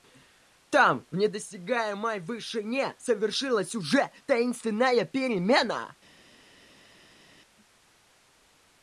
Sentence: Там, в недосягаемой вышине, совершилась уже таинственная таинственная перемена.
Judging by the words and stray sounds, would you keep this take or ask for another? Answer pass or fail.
fail